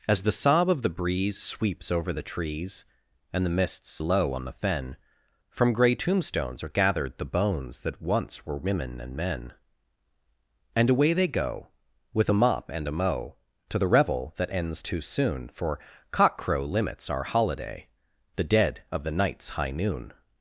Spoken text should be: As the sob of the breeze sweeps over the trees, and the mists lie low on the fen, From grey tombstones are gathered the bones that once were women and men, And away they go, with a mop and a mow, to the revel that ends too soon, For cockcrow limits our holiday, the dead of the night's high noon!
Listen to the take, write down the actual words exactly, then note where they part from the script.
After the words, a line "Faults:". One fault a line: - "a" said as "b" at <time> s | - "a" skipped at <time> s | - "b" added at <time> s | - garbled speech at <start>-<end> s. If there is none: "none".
As the sob of the breeze sweeps over the trees, and the mists low on the fen, From grey tombstones are gathered the bones that once were women and men, And away they go, with a mop and a mow, to the revel that ends too soon, For cockcrow limits our holiday, the dead of the night's high noon!
Faults:
- "lie" skipped at 4.0 s